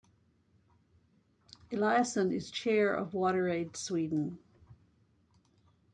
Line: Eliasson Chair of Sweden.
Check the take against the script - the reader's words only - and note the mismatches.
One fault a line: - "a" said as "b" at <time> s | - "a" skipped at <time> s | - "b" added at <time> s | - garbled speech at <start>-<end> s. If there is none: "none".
- "is" added at 2.3 s
- "WaterAid" added at 3.1 s